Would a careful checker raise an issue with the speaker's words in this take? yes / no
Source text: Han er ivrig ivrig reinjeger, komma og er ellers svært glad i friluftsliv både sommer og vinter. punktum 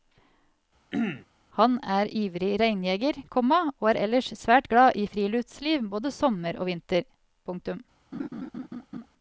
yes